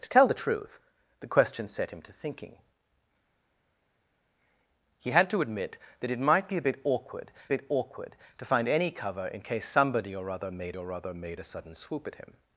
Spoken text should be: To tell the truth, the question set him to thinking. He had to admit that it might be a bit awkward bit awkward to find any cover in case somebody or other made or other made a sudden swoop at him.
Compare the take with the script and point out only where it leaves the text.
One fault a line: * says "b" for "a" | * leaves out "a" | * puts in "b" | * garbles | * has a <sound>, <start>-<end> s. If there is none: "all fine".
all fine